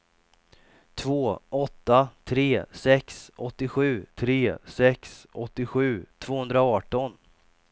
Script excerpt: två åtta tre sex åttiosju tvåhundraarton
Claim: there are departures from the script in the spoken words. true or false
true